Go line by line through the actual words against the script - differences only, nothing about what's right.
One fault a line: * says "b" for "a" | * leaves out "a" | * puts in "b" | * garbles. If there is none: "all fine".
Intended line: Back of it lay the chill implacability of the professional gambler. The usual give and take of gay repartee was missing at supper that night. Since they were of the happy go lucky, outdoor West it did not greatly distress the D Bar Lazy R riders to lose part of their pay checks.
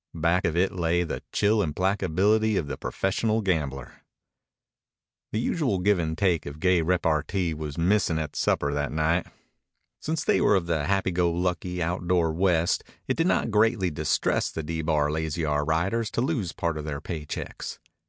all fine